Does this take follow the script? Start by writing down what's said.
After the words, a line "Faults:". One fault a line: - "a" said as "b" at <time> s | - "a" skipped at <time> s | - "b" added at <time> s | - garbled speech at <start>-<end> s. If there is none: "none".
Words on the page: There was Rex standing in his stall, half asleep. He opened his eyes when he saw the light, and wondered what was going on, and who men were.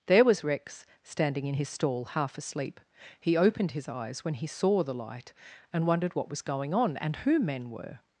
There was Rex standing in his stall, half asleep. He opened his eyes when he saw the light, and wondered what was going on, and who men were.
Faults:
none